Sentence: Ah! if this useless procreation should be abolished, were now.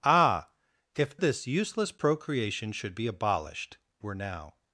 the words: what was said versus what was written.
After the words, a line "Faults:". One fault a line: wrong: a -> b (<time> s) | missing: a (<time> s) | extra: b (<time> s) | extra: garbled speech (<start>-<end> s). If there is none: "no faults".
Ah! if this useless procreation should be abolished, were now.
Faults:
no faults